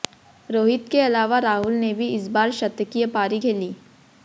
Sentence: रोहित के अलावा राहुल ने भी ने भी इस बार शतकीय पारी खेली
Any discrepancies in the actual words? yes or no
yes